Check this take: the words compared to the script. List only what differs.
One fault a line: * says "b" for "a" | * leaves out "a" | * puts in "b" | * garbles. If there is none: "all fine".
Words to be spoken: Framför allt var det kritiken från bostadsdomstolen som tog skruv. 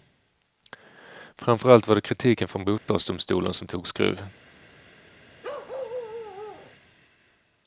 all fine